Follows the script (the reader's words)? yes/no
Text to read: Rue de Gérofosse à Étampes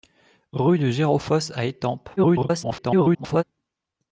no